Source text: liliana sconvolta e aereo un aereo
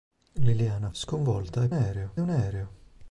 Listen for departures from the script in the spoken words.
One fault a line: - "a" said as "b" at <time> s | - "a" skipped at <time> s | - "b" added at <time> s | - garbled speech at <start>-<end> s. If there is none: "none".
none